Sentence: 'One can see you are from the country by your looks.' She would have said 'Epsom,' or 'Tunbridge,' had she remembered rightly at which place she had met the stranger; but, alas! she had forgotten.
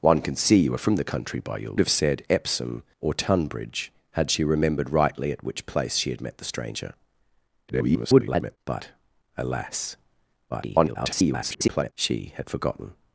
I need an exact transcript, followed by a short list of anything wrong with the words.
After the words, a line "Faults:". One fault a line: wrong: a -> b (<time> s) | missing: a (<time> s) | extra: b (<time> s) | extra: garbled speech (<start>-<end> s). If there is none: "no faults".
'One can see you are from the country by your have said 'Epsom,' or 'Tunbridge,' had she remembered rightly at which place she had met the stranger; [garbled] but, alas! [garbled] she had forgotten.
Faults:
missing: looks She would (1.8 s)
extra: garbled speech (7.7-8.6 s)
extra: garbled speech (10.5-11.9 s)